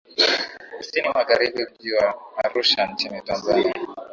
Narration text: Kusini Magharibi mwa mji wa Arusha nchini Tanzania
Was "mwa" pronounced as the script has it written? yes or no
no